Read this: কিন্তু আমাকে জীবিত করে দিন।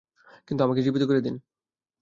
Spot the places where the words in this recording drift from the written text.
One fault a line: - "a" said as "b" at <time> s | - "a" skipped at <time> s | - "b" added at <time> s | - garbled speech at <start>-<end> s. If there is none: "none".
none